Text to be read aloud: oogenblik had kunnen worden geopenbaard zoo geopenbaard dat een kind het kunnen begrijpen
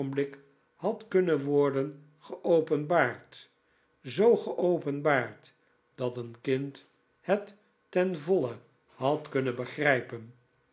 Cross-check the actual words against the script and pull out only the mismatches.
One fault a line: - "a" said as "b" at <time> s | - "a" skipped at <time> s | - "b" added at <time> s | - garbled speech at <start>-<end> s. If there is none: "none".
- "ten voile had" added at 7.9 s